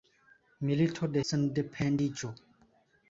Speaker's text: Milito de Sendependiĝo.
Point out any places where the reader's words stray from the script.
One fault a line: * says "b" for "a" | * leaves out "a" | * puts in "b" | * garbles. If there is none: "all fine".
all fine